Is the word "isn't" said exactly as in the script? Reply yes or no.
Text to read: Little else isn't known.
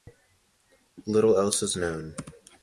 no